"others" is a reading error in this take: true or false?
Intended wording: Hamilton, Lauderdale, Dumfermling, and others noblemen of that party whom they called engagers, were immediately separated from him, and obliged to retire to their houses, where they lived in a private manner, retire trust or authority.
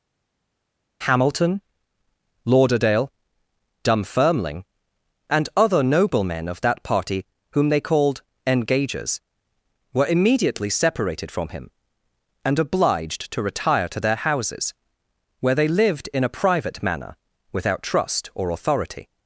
true